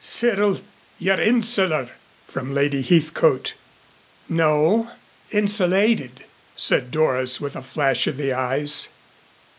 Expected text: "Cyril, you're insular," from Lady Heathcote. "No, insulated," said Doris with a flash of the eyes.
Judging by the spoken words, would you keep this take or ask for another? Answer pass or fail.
pass